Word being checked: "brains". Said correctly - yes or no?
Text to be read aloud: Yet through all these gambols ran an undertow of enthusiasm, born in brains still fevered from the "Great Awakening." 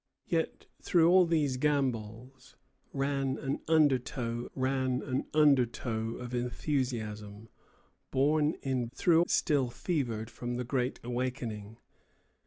no